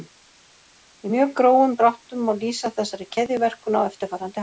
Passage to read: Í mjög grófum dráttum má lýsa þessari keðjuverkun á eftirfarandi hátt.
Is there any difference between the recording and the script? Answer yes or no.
no